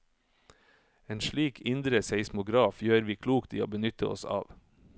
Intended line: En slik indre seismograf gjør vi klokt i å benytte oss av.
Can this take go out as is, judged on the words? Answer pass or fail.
pass